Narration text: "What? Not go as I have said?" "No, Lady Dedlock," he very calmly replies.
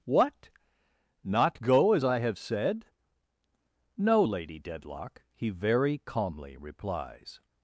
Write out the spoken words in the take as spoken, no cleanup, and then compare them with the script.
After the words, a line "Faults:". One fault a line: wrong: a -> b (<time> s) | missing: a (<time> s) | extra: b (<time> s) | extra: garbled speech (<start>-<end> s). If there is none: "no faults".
"What? Not go as I have said?" "No, Lady Dedlock," he very calmly replies.
Faults:
no faults